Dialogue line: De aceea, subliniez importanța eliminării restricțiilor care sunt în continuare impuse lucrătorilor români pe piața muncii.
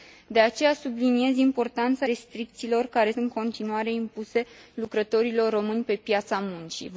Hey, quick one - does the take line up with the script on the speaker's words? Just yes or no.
no